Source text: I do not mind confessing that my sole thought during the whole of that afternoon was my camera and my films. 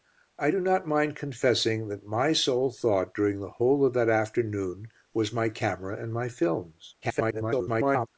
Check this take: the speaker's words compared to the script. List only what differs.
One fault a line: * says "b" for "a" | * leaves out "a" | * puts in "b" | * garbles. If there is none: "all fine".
* garbles